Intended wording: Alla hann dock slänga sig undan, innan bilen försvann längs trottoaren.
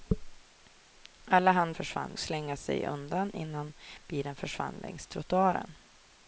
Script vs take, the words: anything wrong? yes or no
yes